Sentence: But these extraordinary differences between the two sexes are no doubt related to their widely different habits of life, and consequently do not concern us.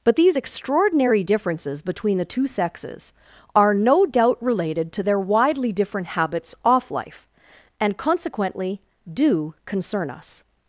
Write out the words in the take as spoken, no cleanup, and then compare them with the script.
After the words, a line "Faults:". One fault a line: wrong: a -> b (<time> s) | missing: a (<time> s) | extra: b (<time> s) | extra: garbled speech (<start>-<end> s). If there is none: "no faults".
But these extraordinary differences between the two sexes are no doubt related to their widely different habits off life, and consequently do concern us.
Faults:
wrong: of -> off (6.6 s)
missing: not (9.5 s)